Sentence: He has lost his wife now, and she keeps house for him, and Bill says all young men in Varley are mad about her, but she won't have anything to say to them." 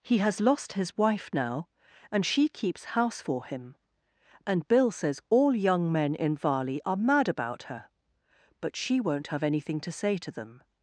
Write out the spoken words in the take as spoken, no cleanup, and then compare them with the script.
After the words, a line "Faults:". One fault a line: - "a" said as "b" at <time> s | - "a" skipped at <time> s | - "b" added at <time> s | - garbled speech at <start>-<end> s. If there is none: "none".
He has lost his wife now, and she keeps house for him, and Bill says all young men in Varley are mad about her, but she won't have anything to say to them."
Faults:
none